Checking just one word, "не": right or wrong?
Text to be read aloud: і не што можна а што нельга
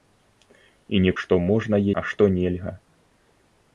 right